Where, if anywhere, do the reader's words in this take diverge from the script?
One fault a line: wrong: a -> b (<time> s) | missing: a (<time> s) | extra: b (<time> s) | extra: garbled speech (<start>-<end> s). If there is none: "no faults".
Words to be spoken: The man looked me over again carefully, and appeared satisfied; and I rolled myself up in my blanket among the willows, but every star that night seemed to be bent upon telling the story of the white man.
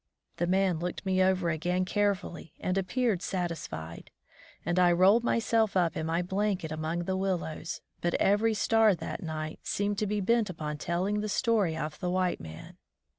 no faults